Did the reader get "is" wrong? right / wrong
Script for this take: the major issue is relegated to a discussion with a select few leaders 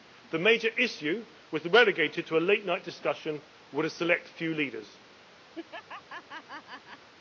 wrong